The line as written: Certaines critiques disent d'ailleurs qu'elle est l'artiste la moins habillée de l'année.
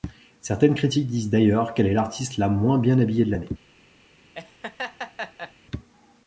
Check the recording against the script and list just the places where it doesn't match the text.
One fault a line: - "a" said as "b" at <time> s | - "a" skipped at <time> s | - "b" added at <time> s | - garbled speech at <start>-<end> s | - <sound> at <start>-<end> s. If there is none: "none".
- "bien" added at 2.8 s
- laugh at 4.3-5.5 s